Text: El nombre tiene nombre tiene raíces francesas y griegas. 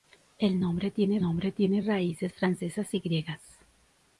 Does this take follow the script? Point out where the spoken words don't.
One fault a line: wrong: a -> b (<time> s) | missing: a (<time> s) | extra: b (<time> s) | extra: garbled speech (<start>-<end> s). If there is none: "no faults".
no faults